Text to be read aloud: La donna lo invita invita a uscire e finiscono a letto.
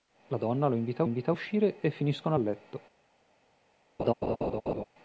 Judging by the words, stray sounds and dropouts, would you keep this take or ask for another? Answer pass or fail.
fail